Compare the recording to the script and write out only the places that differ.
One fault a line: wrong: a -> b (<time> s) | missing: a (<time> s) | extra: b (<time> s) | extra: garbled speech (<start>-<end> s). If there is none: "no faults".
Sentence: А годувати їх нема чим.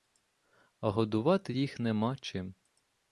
no faults